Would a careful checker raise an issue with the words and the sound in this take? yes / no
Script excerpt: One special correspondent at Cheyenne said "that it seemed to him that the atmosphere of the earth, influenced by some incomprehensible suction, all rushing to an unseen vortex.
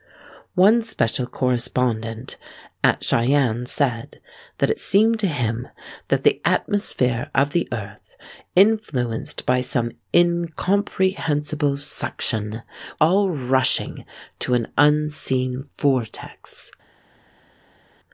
no